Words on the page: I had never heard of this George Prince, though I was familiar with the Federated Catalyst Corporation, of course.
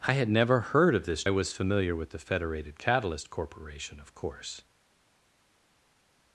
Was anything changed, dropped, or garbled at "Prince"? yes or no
yes